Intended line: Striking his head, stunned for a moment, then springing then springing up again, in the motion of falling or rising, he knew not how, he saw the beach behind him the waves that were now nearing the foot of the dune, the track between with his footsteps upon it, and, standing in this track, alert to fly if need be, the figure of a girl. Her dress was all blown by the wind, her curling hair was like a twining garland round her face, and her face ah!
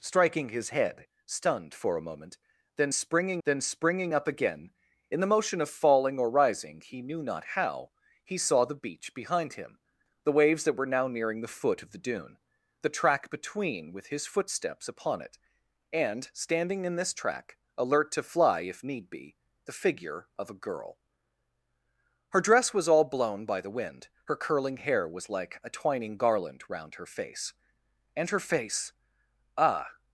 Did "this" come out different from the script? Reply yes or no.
no